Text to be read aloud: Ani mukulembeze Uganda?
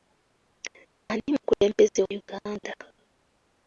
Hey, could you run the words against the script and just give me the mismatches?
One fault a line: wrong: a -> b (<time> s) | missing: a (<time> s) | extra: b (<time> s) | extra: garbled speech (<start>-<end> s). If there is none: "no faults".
no faults